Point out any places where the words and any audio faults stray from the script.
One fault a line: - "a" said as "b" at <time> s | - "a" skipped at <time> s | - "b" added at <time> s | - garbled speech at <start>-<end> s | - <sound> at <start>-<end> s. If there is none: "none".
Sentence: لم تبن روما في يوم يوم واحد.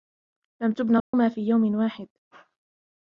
- dropout at 1.0-1.1 s
- "يوم" skipped at 1.7 s